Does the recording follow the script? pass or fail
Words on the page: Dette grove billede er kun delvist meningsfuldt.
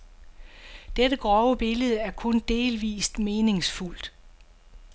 pass